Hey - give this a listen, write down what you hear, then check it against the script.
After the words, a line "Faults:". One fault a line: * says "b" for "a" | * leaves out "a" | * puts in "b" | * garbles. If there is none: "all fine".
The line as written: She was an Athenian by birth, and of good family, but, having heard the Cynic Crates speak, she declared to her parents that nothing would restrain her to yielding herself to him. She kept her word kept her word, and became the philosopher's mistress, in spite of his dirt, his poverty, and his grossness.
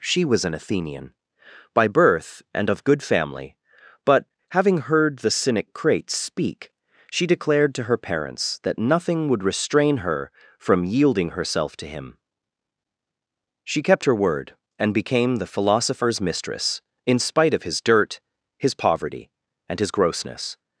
She was an Athenian by birth, and of good family, but, having heard the Cynic Crates speak, she declared to her parents that nothing would restrain her from yielding herself to him. She kept her word, and became the philosopher's mistress, in spite of his dirt, his poverty, and his grossness.
Faults:
* says "from" for "to"
* leaves out "kept her word"